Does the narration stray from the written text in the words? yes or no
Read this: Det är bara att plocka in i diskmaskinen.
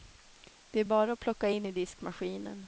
no